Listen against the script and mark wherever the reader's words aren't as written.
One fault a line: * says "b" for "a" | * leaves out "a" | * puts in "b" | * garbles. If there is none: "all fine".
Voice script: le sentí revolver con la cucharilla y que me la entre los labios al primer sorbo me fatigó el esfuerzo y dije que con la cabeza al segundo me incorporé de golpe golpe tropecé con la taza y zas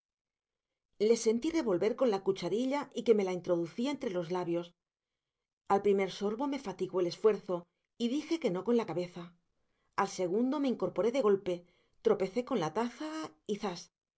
* puts in "introducía"
* puts in "no"
* leaves out "golpe"